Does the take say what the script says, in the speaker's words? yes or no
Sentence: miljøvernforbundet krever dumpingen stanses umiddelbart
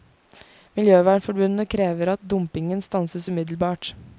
no